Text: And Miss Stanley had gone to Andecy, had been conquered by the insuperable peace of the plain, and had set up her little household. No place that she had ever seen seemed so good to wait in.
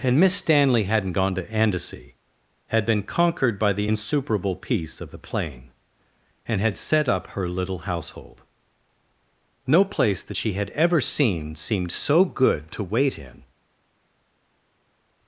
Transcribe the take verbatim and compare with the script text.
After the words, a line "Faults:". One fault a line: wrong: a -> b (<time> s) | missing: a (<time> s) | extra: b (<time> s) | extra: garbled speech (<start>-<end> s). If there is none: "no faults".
And Miss Stanley hadn't gone to Andecy, had been conquered by the insuperable peace of the plain, and had set up her little household. No place that she had ever seen seemed so good to wait in.
Faults:
wrong: had -> hadn't (0.8 s)